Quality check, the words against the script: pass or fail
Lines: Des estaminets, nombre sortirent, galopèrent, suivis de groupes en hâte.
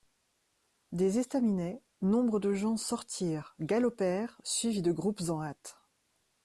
fail